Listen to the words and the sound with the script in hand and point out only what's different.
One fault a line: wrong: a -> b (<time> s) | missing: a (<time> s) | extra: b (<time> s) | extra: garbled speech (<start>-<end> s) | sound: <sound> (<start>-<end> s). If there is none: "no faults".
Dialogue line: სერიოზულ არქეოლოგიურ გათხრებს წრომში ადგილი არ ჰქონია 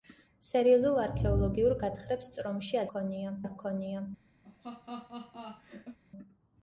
wrong: ადგილი -> ჰქონია (2.9 s)
sound: laugh (4.4-6.0 s)